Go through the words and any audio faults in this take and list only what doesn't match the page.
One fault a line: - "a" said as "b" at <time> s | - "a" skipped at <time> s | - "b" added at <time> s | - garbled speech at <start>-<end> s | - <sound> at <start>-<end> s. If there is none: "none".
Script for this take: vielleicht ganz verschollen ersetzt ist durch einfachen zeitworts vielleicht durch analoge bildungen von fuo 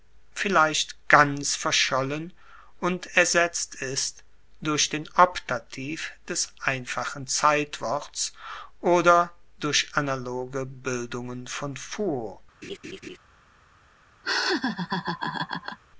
- "und" added at 2.8 s
- "den optativ des" added at 4.9 s
- "vielleicht" said as "oder" at 8.8 s
- laugh at 12.6-13.2 s
- laugh at 14.2-15.8 s